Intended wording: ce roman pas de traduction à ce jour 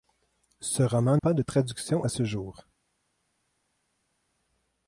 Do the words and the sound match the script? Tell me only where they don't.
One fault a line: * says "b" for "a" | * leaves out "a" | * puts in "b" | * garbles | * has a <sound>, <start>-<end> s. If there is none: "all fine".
all fine